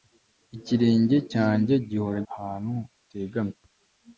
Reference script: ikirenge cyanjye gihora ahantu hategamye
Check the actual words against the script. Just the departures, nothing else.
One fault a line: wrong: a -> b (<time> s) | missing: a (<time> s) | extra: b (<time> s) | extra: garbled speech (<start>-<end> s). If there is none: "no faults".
no faults